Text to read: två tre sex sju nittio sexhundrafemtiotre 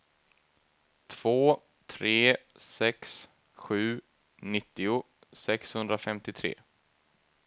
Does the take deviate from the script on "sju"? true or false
false